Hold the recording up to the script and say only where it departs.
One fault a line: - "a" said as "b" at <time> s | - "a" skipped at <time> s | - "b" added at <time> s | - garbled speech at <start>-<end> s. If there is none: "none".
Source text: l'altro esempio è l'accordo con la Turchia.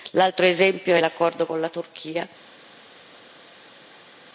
none